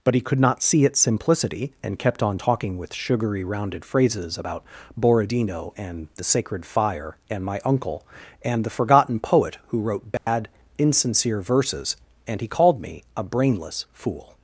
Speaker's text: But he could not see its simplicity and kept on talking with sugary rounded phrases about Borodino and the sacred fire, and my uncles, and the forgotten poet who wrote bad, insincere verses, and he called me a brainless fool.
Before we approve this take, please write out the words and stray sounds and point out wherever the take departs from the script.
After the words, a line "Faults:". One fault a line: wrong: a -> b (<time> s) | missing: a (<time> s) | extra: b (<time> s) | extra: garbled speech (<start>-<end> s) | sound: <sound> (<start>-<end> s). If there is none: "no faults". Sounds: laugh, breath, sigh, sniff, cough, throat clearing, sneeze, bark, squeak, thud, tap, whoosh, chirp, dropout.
But he could not see its simplicity and kept on talking with sugary rounded phrases about Borodino and the sacred fire, and my uncle, and the forgotten poet who wrote bad, insincere verses, and he called me a brainless fool.
Faults:
wrong: uncles -> uncle (7.7 s)
sound: dropout (10.2-10.3 s)